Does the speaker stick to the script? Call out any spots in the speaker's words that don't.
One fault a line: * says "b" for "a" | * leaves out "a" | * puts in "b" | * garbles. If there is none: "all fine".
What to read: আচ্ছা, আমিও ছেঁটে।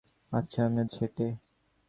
all fine